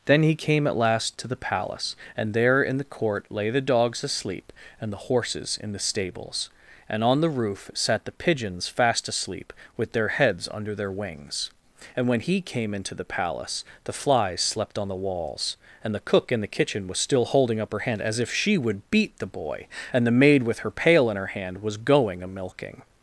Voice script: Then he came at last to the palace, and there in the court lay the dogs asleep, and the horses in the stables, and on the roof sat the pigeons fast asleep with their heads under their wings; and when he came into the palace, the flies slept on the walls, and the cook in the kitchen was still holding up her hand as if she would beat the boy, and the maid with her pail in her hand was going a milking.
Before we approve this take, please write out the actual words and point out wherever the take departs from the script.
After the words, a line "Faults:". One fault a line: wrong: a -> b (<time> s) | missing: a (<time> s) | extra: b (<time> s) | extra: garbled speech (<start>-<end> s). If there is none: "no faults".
Then he came at last to the palace, and there in the court lay the dogs asleep, and the horses in the stables, and on the roof sat the pigeons fast asleep with their heads under their wings; and when he came into the palace, the flies slept on the walls, and the cook in the kitchen was still holding up her hand as if she would beat the boy, and the maid with her pail in her hand was going a milking.
Faults:
no faults